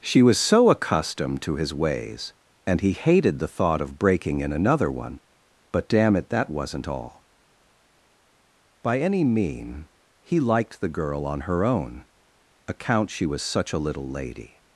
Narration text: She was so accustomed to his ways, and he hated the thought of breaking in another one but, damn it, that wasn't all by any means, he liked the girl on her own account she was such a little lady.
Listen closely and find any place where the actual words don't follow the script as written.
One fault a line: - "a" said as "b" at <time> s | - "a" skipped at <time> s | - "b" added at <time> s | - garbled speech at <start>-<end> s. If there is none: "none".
- "means" said as "mean" at 9.2 s